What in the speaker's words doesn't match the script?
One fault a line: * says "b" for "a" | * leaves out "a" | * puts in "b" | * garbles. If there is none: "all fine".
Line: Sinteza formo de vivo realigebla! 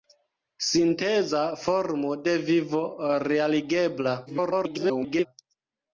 * garbles